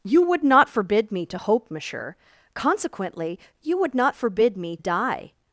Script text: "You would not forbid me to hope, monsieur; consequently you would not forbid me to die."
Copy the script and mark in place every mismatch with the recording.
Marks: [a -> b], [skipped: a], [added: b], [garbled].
"You would not forbid me to hope, monsieur; consequently you would not forbid me [skipped: to] die."